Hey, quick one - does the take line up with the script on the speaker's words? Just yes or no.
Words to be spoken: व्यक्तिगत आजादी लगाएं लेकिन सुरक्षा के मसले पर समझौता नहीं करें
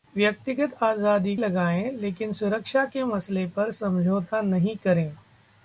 yes